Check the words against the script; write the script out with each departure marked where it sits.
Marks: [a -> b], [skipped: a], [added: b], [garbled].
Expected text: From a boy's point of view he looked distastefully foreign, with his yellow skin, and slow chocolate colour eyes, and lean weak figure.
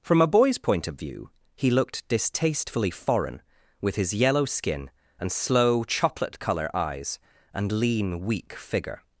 From a boy's point of view he looked distastefully foreign, with his yellow skin, and slow chocolate colour eyes, and lean weak figure.